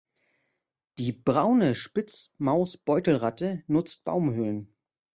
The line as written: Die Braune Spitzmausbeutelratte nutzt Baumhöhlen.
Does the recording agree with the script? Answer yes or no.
yes